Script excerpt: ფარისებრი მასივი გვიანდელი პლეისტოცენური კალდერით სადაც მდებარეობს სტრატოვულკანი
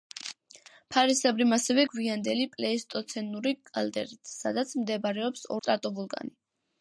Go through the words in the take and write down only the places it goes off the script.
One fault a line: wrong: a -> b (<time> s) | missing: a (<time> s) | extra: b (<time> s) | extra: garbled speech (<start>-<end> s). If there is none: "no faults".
no faults